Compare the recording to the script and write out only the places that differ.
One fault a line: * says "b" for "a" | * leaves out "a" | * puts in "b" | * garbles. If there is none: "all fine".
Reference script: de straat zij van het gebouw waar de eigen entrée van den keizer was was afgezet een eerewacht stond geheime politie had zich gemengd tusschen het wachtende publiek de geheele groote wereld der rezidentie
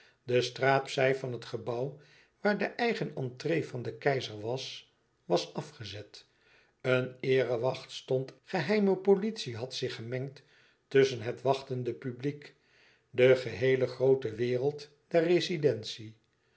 all fine